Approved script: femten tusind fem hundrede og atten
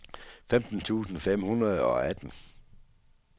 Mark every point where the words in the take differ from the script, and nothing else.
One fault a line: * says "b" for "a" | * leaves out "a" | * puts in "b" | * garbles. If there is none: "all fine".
all fine